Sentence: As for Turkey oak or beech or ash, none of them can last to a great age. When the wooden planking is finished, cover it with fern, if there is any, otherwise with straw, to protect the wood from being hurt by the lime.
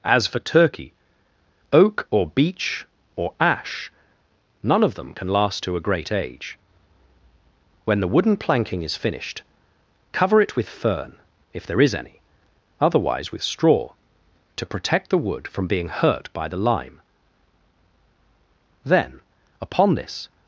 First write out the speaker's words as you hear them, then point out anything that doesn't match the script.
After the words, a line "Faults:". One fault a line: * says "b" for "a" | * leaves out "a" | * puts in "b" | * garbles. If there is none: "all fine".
As for Turkey oak or beech or ash, none of them can last to a great age. When the wooden planking is finished, cover it with fern, if there is any, otherwise with straw, to protect the wood from being hurt by the lime. Then, upon this
Faults:
* puts in "Then upon this"